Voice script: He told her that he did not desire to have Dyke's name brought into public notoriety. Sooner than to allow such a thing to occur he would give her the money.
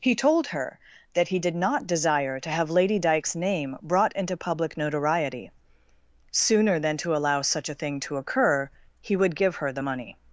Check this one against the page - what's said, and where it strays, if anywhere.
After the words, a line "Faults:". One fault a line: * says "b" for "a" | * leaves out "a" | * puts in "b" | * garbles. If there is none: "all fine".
He told her that he did not desire to have Lady Dyke's name brought into public notoriety. Sooner than to allow such a thing to occur he would give her the money.
Faults:
* puts in "Lady"